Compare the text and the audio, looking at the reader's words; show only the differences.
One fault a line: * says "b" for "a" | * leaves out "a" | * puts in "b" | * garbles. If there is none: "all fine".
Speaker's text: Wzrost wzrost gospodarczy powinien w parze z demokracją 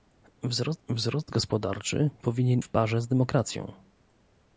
all fine